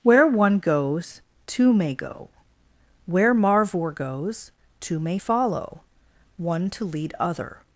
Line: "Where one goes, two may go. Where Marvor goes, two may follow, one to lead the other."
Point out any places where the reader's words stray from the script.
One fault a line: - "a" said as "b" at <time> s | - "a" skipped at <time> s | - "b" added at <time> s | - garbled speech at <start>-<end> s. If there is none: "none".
- "the" skipped at 7.1 s